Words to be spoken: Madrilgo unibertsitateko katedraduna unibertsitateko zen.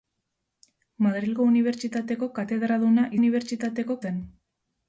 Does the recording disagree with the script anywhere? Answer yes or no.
no